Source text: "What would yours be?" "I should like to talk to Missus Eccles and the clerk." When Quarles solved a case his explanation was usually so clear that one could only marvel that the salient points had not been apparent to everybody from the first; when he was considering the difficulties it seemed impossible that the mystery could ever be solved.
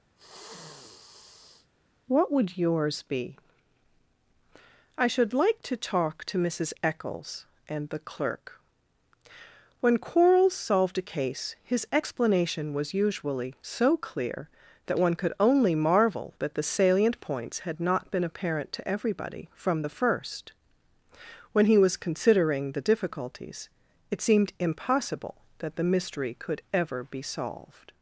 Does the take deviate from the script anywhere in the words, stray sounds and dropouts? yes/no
yes